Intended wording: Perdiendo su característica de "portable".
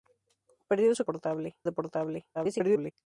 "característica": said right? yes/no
no